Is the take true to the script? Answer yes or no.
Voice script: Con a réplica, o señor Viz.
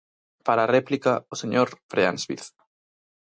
no